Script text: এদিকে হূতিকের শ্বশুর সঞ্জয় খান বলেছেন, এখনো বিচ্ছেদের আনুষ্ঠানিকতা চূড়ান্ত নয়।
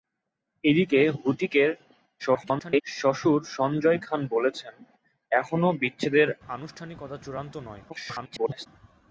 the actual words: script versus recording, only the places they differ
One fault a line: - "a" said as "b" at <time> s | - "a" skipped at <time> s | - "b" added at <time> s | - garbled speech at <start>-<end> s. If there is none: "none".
- garbled speech at 2.2-2.8 s
- garbled speech at 7.9-8.7 s